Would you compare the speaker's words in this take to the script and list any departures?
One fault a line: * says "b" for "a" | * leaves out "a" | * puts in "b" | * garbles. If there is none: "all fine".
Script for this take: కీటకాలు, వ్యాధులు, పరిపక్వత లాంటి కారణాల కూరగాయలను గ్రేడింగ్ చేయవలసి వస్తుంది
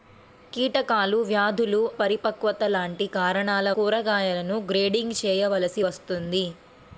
all fine